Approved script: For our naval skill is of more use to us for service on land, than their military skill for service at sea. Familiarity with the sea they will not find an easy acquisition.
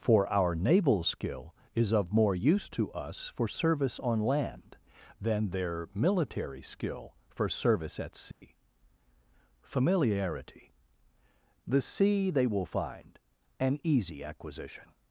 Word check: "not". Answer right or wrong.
wrong